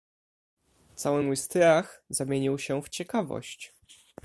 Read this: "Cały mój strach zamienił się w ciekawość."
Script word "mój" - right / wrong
right